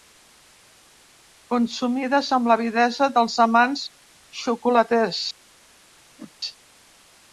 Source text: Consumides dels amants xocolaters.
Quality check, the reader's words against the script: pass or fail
fail